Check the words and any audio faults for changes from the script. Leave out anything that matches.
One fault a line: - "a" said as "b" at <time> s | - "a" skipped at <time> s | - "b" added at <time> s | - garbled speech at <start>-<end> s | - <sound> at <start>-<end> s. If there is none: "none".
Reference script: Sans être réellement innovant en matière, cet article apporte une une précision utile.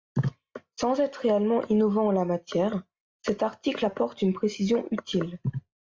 - "la" added at 2.1 s
- "une" skipped at 4.3 s